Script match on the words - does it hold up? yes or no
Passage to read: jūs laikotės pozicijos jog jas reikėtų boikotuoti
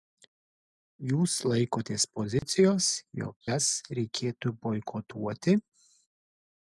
yes